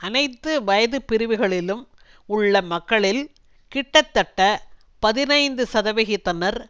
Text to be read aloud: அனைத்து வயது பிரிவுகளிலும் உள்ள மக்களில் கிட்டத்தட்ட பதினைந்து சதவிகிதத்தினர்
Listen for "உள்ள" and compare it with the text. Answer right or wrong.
right